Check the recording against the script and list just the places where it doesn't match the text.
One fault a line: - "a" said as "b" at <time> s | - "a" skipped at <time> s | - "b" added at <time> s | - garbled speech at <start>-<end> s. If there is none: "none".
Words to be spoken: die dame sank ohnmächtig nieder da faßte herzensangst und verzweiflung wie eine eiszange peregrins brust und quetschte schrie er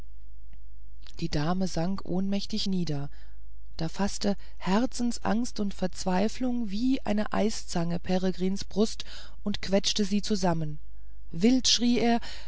- "sie zusammen wild" added at 10.0 s